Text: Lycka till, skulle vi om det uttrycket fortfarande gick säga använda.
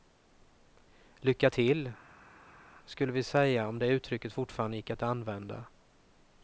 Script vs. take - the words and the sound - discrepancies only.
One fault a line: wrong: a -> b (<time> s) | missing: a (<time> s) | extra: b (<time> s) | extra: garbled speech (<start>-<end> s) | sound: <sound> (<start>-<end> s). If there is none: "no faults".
extra: säga (3.2 s)
wrong: säga -> att (4.9 s)